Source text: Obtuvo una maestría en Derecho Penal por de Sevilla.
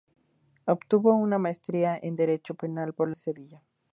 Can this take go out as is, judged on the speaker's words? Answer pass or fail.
pass